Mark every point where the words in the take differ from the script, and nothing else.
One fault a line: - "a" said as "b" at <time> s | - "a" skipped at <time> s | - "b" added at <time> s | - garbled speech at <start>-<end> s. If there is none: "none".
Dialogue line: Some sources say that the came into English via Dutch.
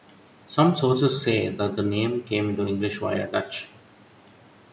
- "name" added at 1.8 s